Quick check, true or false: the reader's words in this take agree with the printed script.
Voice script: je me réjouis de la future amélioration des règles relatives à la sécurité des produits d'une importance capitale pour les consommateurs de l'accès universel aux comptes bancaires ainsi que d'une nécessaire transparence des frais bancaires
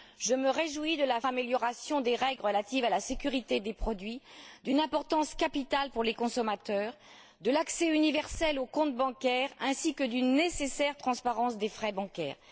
false